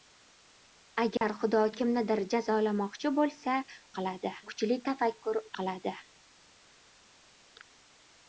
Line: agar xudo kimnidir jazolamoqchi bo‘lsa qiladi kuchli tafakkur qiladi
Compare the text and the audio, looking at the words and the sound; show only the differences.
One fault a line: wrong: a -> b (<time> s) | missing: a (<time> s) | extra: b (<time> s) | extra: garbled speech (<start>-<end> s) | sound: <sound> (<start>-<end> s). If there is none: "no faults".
sound: dropout (1.2-1.2 s)